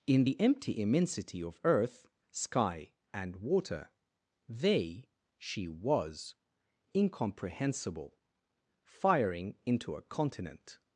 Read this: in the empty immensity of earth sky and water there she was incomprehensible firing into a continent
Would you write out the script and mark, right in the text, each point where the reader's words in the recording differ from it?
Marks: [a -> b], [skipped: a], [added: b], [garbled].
in the empty immensity of earth sky and water [there -> they] she was incomprehensible firing into a continent